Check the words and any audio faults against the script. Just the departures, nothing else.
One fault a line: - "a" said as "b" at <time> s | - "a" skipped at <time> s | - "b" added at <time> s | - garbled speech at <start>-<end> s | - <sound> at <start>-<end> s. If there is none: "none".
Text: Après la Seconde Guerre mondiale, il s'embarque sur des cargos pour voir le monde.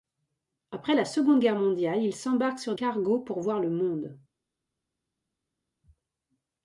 - "des" skipped at 2.7 s